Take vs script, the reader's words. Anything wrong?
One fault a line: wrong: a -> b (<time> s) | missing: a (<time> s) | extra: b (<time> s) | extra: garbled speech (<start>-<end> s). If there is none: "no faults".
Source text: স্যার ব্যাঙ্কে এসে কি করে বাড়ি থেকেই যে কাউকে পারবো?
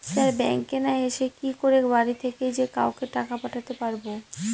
extra: না (0.8 s)
extra: টাকা পাঠাতে (3.1 s)